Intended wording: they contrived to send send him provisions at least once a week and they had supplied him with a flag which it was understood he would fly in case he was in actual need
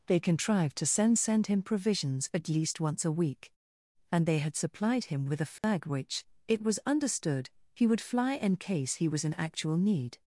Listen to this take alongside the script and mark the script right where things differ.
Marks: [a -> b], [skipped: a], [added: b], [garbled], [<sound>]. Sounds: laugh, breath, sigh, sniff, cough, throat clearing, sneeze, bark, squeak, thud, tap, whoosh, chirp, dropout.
they contrived to send send him provisions at least once a week and they had supplied him with a flag [dropout] which it was understood he would fly in case he was in actual need